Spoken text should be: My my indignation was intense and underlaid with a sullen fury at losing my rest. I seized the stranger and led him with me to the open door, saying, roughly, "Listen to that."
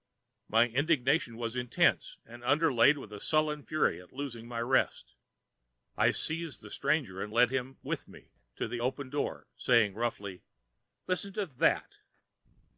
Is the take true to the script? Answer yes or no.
no